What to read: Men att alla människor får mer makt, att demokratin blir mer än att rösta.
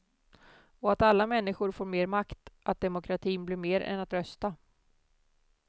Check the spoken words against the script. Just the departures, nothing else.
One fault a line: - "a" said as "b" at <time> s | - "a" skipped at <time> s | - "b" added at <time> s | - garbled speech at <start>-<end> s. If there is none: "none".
- "Men" said as "Och" at 0.8 s